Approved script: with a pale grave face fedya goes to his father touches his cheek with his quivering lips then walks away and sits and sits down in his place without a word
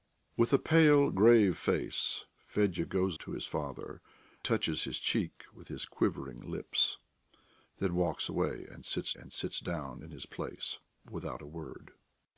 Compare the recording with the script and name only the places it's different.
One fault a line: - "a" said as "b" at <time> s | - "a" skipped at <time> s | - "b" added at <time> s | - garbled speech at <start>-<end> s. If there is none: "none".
none